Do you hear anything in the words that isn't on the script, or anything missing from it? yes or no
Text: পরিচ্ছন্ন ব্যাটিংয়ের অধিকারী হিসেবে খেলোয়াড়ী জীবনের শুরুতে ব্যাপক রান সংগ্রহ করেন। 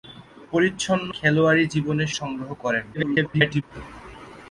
yes